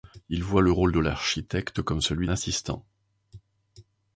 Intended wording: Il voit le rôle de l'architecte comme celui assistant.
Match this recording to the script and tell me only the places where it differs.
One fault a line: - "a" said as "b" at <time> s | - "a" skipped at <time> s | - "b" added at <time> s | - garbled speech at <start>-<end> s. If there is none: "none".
none